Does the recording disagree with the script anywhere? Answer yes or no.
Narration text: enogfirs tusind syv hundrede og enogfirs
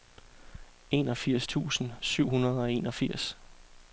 no